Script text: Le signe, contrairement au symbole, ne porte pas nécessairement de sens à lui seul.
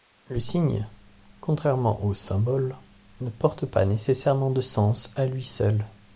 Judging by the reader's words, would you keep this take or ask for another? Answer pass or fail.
pass